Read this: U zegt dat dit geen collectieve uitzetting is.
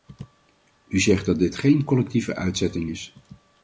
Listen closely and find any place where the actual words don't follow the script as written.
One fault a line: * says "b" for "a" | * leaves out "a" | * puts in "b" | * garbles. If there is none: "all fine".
all fine